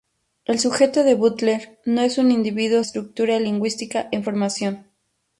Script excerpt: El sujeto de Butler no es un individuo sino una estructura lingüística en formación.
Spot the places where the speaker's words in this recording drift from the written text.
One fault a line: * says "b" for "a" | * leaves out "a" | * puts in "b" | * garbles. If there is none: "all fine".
* leaves out "sino una"